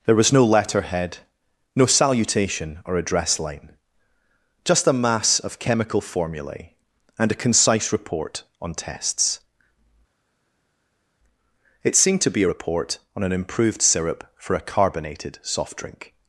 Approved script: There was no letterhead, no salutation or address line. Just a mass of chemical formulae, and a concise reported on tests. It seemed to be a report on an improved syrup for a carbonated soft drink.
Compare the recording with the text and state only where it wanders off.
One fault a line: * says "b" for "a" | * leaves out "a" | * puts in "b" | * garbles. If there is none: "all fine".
* says "report" for "reported"